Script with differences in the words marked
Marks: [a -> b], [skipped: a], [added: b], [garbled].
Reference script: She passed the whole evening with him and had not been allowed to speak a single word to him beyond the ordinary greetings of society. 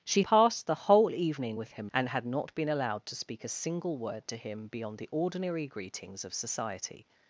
She passed the whole evening with him and had not been allowed to speak a single word to him beyond the ordinary greetings of society.